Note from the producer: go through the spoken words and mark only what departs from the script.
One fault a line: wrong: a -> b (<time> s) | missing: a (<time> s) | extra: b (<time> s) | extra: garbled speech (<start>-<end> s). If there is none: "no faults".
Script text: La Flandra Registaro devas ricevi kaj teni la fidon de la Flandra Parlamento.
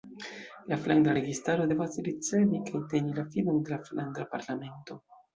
no faults